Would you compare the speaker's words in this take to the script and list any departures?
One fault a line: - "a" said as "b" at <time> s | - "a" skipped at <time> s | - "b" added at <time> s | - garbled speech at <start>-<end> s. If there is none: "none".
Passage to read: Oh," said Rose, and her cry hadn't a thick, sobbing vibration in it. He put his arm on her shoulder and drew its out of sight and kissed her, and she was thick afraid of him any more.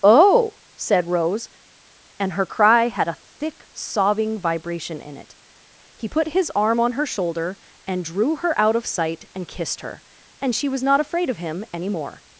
- "hadn't" said as "had" at 2.9 s
- "its" said as "her" at 8.4 s
- "thick" said as "not" at 10.8 s